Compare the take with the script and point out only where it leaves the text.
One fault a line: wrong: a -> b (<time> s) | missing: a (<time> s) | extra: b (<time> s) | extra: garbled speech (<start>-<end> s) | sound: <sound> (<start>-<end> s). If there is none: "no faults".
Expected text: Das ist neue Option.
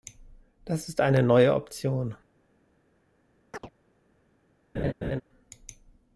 extra: eine (1.0 s)
sound: chirp (3.5-3.7 s)
sound: laugh (4.7-5.2 s)